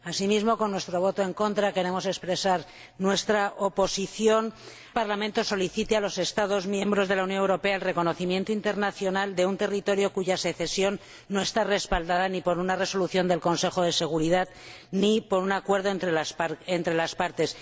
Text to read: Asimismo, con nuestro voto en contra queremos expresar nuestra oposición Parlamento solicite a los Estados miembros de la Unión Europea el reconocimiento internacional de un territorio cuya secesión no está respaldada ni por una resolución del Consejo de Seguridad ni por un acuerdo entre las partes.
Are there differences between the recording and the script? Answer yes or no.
no